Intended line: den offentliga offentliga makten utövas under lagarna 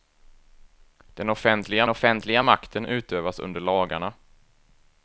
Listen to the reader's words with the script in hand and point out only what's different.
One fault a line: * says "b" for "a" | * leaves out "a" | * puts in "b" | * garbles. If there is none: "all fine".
all fine